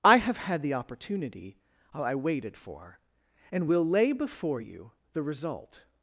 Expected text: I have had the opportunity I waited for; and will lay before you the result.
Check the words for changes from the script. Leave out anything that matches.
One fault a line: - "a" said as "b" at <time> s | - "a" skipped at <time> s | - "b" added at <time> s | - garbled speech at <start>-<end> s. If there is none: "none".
none